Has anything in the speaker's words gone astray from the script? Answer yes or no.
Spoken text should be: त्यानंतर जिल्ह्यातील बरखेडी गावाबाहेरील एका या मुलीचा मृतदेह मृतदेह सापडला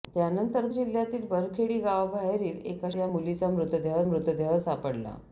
no